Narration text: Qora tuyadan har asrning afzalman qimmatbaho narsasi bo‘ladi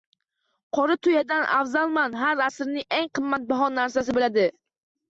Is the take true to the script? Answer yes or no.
no